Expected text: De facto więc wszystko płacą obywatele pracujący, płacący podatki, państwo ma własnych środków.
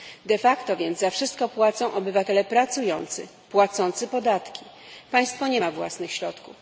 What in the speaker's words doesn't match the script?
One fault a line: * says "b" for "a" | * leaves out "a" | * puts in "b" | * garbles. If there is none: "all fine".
* puts in "za"
* puts in "nie"